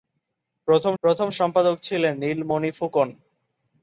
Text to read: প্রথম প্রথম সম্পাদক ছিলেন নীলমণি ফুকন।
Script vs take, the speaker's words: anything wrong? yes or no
no